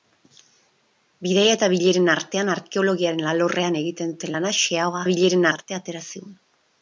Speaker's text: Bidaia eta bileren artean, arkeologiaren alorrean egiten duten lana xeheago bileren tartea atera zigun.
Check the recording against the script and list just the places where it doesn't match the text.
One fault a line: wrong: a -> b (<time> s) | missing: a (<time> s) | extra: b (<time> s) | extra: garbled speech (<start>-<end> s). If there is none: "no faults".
no faults